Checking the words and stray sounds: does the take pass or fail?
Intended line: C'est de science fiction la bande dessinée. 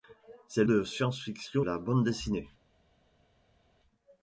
pass